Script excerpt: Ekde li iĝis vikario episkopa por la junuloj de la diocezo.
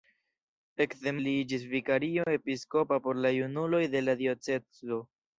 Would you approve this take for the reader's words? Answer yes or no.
yes